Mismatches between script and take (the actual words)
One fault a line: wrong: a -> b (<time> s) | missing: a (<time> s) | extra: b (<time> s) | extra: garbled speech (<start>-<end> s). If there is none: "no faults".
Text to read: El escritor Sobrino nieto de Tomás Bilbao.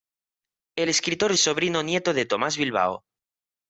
no faults